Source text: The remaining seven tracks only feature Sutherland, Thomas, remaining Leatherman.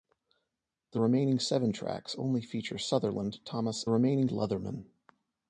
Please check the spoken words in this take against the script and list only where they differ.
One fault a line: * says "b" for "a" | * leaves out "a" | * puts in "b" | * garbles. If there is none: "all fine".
all fine